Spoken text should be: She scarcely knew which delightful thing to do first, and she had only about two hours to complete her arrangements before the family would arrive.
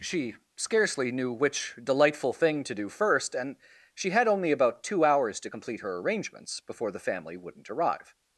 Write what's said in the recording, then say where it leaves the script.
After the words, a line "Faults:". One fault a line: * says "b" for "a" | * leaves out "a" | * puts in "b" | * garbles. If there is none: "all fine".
She scarcely knew which delightful thing to do first, and she had only about two hours to complete her arrangements before the family wouldn't arrive.
Faults:
* says "wouldn't" for "would"